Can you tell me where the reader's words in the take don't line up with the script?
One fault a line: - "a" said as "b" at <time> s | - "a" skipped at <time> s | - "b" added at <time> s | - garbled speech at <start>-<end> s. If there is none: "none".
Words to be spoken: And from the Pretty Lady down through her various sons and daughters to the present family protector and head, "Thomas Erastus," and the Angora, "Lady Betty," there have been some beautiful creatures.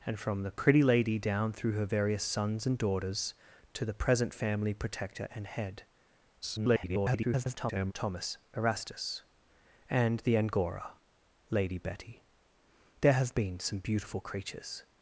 - garbled speech at 6.4-7.9 s